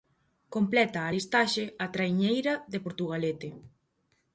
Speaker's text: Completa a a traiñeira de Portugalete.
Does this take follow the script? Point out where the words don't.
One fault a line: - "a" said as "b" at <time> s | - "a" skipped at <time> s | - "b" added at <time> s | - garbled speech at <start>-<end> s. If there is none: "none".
- "listaxe" added at 1.1 s